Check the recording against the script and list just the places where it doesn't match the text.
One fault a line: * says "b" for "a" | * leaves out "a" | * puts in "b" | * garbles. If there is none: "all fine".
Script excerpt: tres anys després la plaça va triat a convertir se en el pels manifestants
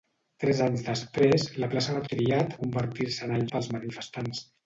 all fine